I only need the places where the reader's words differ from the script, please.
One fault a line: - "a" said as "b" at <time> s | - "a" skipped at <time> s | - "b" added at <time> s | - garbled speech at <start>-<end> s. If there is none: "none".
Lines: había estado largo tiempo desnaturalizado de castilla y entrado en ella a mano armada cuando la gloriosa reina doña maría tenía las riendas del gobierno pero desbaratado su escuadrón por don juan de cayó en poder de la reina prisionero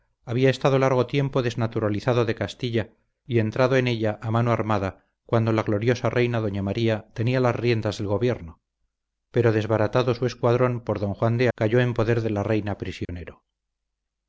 none